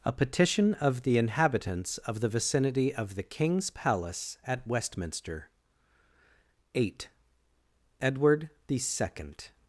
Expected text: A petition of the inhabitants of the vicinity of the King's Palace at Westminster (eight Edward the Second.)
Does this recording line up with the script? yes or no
yes